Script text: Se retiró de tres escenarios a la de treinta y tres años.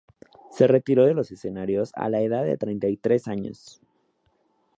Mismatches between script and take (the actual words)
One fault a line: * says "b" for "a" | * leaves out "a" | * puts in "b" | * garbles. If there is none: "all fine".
* says "los" for "tres"
* puts in "edad"